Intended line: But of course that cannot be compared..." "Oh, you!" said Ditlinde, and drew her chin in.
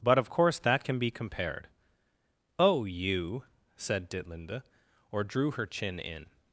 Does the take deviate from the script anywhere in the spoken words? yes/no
yes